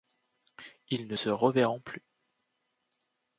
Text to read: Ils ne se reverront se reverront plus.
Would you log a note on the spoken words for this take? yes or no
yes